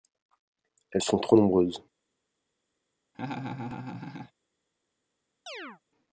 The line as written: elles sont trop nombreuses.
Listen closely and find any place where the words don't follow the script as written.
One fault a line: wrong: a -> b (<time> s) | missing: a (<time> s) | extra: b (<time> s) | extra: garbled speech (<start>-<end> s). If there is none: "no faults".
no faults